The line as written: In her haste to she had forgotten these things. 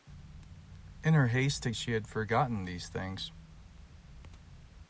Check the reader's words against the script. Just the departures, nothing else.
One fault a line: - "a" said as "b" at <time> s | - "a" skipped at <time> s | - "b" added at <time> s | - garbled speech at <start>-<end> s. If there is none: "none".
none